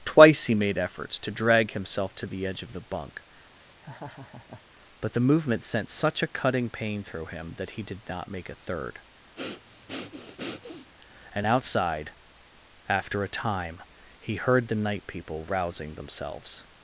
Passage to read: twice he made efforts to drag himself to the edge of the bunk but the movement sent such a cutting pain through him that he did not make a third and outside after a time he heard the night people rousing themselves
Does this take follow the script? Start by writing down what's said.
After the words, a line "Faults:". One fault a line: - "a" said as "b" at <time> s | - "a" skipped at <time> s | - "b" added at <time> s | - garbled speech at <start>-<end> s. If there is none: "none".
twice he made efforts to drag himself to the edge of the bunk but the movement sent such a cutting pain through him that he did not make a third and outside after a time he heard the night people rousing themselves
Faults:
none